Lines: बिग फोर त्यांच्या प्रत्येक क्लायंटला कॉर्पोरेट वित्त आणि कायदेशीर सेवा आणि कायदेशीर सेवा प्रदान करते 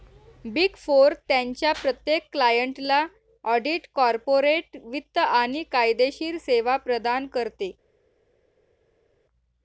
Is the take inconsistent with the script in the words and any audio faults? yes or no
yes